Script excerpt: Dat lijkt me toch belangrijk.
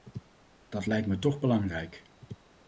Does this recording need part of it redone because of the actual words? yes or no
no